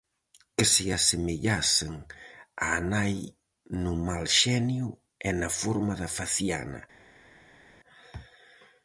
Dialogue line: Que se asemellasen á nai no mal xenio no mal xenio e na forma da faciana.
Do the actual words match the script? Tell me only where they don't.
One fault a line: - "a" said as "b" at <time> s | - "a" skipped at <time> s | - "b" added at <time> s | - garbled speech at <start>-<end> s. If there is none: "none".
- "no mal xenio" skipped at 4.9 s